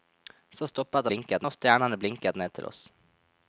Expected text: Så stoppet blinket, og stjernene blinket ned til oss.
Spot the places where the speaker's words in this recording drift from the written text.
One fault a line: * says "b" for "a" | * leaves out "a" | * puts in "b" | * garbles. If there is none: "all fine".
all fine